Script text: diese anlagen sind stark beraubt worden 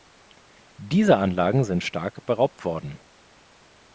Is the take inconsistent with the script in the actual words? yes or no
no